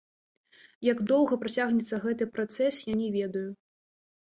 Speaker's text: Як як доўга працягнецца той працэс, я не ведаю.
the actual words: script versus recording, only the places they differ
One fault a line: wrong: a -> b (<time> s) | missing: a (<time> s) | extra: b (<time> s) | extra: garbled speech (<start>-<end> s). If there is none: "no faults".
missing: як (1.0 s)
wrong: той -> гэты (2.1 s)